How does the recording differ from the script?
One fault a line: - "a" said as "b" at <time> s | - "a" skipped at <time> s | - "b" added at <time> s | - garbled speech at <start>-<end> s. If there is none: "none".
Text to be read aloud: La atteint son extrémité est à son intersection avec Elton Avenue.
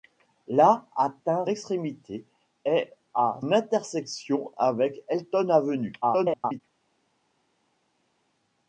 - "son" skipped at 1.4 s
- "son" skipped at 3.4 s
- garbled speech at 6.0-6.6 s